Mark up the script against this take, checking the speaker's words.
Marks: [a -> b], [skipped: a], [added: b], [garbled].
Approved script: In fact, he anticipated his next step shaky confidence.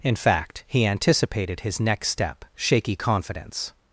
In fact, he anticipated his next step shaky confidence.